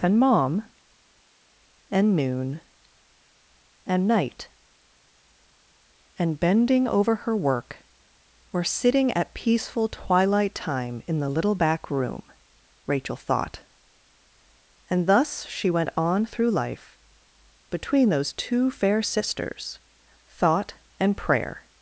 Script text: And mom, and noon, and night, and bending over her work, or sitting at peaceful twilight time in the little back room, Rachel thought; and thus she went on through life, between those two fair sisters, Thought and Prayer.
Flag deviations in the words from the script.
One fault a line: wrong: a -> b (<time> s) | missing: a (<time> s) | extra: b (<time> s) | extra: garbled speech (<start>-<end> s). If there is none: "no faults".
no faults